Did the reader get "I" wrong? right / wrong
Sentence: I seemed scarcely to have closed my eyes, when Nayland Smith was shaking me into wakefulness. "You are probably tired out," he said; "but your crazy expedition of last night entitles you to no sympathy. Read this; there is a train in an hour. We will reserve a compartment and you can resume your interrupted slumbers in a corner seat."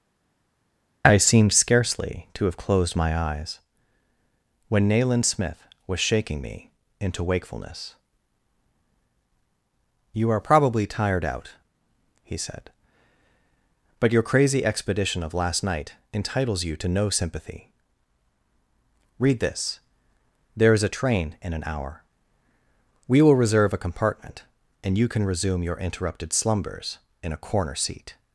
right